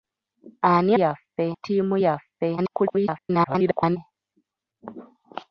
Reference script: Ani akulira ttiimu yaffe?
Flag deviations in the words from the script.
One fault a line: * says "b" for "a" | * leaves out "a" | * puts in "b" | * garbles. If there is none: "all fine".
* says "yaffe" for "akulira"
* garbles